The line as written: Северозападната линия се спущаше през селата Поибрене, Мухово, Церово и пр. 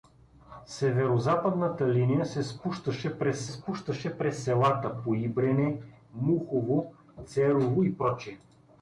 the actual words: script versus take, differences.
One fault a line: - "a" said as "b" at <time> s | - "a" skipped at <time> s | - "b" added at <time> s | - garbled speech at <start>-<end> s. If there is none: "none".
- "спущаше през" added at 3.5 s